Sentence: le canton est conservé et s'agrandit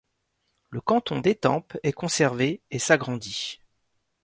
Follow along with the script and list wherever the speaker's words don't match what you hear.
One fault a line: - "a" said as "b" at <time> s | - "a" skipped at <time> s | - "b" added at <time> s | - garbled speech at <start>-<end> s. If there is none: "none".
- "d'étampes" added at 1.2 s